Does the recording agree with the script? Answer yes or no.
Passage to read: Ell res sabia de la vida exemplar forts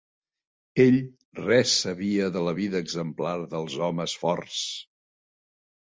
no